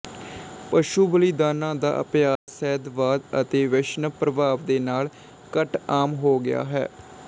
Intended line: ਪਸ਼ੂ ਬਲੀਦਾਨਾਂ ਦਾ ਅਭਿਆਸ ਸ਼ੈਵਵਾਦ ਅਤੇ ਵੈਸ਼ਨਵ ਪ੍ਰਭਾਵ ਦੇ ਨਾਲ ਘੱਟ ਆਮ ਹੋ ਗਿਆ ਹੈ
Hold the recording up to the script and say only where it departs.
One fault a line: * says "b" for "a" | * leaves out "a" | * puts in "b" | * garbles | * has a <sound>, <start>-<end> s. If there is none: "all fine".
* has a dropout, 2.4-2.5 s